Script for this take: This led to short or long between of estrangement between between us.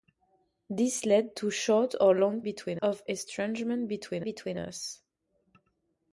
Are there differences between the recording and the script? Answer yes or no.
no